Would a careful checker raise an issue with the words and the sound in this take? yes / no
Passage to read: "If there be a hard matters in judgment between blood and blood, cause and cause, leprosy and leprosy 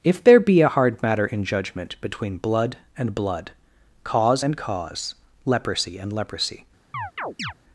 yes